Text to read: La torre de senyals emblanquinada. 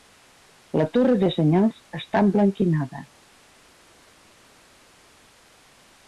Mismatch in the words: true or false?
true